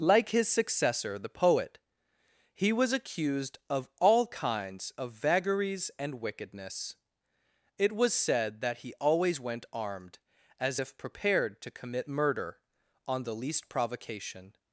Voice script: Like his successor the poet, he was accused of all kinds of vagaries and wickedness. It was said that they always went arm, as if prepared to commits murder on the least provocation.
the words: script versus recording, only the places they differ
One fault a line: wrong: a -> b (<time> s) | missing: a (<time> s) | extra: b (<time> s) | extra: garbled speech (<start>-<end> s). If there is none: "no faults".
wrong: they -> he (8.8 s)
wrong: arm -> armed (9.7 s)
wrong: commits -> commit (11.7 s)